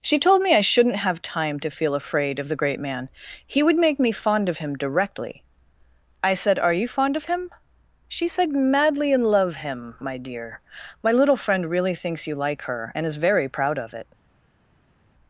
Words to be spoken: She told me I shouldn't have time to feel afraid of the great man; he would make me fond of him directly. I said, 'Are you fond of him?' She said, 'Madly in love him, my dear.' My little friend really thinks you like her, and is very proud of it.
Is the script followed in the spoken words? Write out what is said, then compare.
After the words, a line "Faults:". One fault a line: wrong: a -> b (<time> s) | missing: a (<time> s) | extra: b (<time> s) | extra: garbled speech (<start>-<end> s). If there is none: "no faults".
She told me I shouldn't have time to feel afraid of the great man; he would make me fond of him directly. I said, 'Are you fond of him?' She said, 'Madly in love him, my dear.' My little friend really thinks you like her, and is very proud of it.
Faults:
no faults